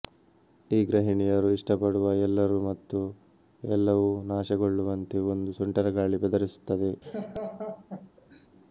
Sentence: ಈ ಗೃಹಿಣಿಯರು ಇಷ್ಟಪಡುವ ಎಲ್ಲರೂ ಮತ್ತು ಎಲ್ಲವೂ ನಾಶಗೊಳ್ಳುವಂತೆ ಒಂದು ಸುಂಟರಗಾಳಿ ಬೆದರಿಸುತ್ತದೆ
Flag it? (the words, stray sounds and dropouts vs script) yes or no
yes